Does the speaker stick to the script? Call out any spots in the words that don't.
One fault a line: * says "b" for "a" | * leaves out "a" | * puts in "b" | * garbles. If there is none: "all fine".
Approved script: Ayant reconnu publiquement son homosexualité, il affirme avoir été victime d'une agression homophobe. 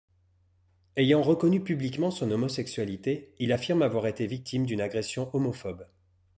all fine